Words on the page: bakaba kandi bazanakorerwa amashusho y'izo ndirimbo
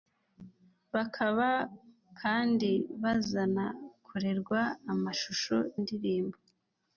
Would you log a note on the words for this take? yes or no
yes